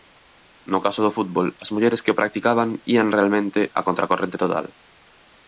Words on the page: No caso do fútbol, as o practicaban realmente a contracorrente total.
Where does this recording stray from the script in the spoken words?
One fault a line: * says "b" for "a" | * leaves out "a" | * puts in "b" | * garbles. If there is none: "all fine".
* puts in "mulleres que"
* puts in "ían"